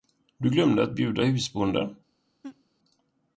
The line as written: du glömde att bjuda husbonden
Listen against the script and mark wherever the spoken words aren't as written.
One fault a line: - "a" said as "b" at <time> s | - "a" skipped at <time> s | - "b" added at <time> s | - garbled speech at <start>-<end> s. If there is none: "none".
none